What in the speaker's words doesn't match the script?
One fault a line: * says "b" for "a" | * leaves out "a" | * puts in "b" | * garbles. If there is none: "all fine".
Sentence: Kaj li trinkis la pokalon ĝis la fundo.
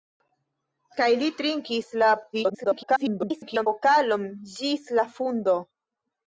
* garbles